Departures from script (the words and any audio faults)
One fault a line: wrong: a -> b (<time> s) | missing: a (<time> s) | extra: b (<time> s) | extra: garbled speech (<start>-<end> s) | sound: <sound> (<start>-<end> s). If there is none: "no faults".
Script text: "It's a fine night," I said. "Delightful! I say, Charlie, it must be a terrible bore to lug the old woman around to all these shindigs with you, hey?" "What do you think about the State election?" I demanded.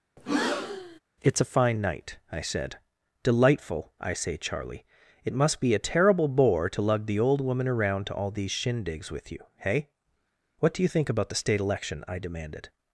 sound: breath (0.2-1.0 s)